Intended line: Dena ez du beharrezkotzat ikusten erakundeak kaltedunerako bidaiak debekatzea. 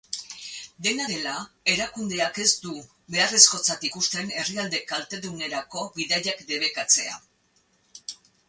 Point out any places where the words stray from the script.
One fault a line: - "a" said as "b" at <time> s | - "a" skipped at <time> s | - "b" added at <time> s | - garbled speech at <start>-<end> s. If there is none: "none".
- "dela erakundeak" added at 1.1 s
- "erakundeak" said as "herrialde" at 4.4 s